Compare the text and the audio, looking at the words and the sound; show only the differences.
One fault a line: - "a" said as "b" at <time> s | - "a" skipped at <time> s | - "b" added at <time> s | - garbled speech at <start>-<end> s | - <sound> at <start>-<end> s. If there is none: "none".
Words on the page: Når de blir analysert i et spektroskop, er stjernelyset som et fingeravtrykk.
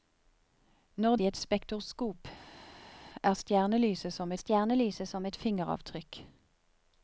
- "de blir analysert" skipped at 1.1 s
- "stjernelyset som" added at 4.4 s